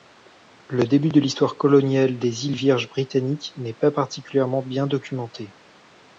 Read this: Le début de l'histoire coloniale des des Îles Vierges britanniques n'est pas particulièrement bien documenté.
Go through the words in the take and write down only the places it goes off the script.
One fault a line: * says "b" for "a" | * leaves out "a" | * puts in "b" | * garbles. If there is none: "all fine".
* leaves out "des"